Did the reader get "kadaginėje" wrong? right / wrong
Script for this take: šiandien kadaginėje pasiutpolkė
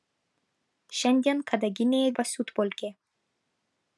right